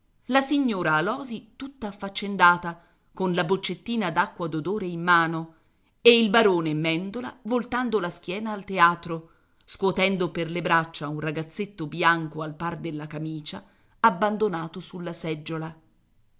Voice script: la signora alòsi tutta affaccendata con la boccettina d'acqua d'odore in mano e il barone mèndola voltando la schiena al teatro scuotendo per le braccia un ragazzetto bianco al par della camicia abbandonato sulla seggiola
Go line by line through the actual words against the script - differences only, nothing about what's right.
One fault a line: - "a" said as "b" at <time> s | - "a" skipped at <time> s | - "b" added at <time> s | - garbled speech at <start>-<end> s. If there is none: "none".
none